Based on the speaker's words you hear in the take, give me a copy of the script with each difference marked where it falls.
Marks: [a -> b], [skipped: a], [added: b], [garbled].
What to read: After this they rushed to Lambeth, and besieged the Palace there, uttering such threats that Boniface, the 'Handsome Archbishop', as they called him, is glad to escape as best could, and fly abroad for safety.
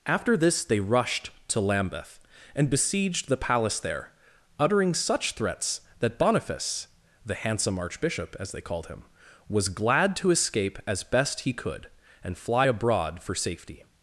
After this they rushed to Lambeth, and besieged the Palace there, uttering such threats that Boniface, the 'Handsome Archbishop', as they called him, [is -> was] glad to escape as best [added: he] could, and fly abroad for safety.